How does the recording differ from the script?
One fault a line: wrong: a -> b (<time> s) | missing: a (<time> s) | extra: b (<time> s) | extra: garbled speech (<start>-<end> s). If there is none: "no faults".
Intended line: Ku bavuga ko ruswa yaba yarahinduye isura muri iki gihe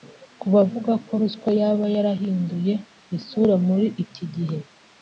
no faults